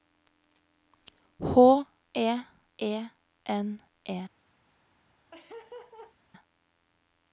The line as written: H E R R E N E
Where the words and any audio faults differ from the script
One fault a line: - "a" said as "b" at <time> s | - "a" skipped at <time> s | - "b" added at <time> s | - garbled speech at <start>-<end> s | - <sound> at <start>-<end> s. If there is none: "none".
- "R R" skipped at 2.3 s
- laugh at 5.3-6.1 s